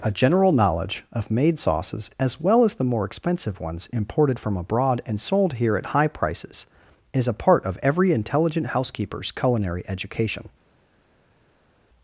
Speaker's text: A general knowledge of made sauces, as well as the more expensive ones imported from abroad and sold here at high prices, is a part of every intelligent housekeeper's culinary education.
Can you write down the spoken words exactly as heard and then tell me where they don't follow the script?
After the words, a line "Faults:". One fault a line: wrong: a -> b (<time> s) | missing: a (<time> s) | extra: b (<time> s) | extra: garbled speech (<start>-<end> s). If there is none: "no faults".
A general knowledge of made sauces, as well as the more expensive ones imported from abroad and sold here at high prices, is a part of every intelligent housekeeper's culinary education.
Faults:
no faults